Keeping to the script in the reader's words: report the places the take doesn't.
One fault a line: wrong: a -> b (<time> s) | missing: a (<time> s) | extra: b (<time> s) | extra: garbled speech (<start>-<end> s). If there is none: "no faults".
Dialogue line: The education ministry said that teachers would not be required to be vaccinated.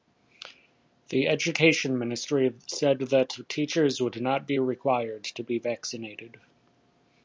no faults